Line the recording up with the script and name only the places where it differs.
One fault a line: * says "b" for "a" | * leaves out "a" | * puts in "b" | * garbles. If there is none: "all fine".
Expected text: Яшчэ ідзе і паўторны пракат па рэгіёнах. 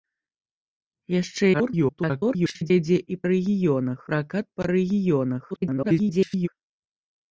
* garbles
* says "рэгіёнах" for "паўторны"
* garbles